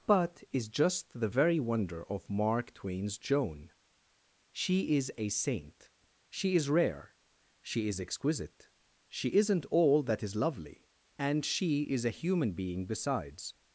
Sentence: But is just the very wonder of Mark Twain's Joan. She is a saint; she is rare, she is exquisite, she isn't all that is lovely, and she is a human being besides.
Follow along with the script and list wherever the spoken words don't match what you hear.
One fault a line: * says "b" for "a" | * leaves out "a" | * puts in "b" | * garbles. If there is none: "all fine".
all fine